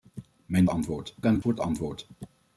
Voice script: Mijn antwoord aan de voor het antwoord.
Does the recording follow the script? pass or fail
pass